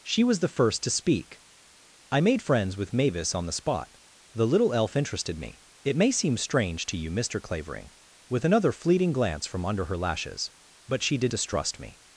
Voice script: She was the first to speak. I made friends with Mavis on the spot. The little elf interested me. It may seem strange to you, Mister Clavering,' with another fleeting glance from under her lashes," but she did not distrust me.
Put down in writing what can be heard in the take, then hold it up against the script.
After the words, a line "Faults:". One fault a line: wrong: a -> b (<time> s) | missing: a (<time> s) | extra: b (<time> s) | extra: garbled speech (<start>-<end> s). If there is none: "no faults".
She was the first to speak. I made friends with Mavis on the spot. The little elf interested me. It may seem strange to you, Mister Clavering,' with another fleeting glance from under her lashes," but she did distrust me.
Faults:
missing: not (11.3 s)